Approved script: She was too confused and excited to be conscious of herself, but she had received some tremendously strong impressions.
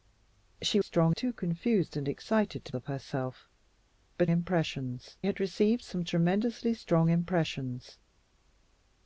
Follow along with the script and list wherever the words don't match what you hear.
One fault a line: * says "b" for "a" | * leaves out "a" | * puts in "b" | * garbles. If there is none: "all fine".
* says "strong" for "was"
* leaves out "be conscious"
* says "impressions" for "she"